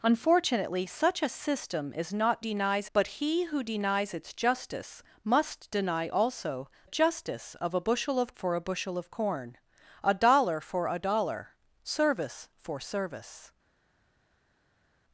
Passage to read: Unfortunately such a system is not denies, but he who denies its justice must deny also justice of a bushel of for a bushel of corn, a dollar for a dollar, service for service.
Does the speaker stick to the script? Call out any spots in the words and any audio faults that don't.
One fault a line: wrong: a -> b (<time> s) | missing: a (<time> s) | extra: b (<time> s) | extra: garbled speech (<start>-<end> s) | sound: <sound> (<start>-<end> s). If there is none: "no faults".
no faults